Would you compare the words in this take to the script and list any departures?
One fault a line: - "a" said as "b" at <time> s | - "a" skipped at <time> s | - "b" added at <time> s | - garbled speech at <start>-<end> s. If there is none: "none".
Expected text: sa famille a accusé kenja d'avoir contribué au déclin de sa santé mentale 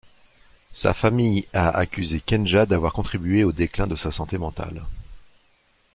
none